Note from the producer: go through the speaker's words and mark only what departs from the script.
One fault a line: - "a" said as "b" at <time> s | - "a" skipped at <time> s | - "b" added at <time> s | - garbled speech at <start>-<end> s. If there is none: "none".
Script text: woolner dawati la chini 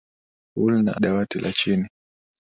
none